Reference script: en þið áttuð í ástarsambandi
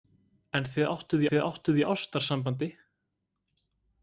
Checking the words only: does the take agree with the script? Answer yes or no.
no